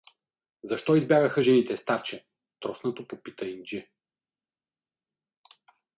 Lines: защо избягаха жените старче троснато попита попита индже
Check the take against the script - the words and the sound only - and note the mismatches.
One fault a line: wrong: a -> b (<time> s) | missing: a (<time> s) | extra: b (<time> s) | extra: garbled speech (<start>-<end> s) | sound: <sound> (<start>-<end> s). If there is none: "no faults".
missing: попита (3.5 s)